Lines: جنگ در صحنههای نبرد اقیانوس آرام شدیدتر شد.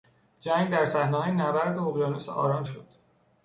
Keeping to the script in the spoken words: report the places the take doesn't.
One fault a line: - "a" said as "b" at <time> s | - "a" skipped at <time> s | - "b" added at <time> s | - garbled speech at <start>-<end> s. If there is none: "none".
- "شدیدتر" skipped at 2.6 s